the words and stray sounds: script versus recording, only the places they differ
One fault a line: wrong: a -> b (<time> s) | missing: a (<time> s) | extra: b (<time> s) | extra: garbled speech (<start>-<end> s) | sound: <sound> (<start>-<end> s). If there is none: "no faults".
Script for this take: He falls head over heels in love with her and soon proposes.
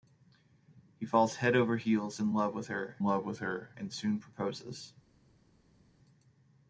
extra: love with her (3.0 s)